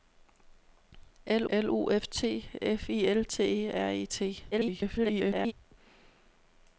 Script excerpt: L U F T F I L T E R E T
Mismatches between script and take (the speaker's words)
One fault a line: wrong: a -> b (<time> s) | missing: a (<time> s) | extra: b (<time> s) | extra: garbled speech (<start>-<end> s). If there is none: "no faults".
extra: l (1.5 s)
extra: garbled speech (4.5-5.5 s)